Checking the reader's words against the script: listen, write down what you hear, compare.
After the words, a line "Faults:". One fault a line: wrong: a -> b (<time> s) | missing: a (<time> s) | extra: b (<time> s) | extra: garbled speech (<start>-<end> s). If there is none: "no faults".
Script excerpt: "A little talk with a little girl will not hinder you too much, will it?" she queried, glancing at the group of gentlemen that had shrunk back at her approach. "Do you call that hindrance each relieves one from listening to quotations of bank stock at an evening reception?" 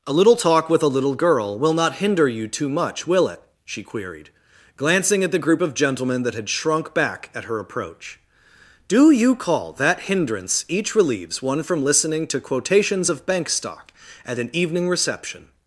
"A little talk with a little girl will not hinder you too much, will it?" she queried, glancing at the group of gentlemen that had shrunk back at her approach. "Do you call that hindrance each relieves one from listening to quotations of bank stock at an evening reception?"
Faults:
no faults